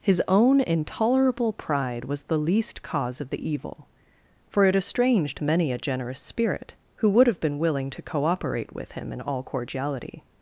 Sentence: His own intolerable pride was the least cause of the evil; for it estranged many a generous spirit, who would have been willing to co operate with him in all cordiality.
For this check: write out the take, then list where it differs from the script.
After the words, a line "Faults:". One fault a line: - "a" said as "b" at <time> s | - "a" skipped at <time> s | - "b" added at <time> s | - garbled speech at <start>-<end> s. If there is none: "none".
His own intolerable pride was the least cause of the evil; for it estranged many a generous spirit, who would have been willing to co operate with him in all cordiality.
Faults:
none